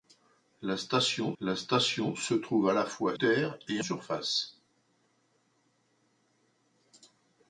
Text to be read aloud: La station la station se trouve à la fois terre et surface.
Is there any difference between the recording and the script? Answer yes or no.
no